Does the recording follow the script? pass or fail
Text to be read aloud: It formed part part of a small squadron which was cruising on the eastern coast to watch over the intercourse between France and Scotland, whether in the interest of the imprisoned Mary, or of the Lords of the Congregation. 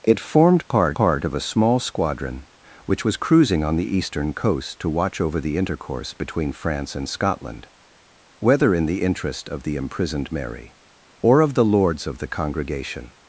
pass